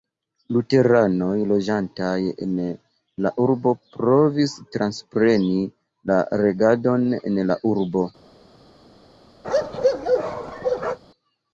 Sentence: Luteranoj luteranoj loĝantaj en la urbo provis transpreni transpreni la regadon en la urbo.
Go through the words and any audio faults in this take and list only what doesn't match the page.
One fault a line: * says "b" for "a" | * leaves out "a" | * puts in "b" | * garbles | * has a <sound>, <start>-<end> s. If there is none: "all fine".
* leaves out "luteranoj"
* leaves out "transpreni"
* has a bark, 9.4-11.0 s